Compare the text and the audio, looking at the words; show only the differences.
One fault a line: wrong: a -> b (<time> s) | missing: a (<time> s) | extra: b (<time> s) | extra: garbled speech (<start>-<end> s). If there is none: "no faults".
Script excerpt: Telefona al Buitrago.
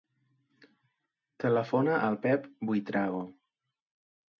extra: Pep (2.3 s)